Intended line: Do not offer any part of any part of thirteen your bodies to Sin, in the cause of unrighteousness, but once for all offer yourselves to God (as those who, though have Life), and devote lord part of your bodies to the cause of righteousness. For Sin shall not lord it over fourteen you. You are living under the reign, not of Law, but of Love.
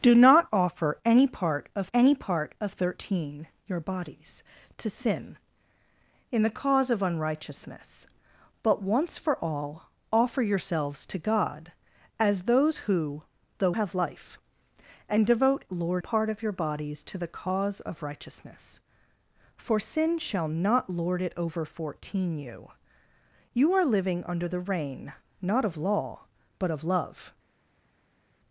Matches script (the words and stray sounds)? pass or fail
pass